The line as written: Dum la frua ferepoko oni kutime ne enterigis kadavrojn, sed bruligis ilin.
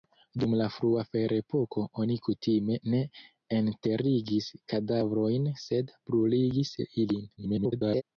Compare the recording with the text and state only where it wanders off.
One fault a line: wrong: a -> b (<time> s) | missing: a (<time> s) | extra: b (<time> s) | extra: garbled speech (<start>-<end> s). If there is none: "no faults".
extra: garbled speech (7.4-8.0 s)